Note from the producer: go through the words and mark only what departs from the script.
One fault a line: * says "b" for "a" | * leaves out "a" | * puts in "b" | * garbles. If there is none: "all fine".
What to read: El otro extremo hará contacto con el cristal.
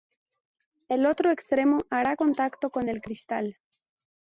all fine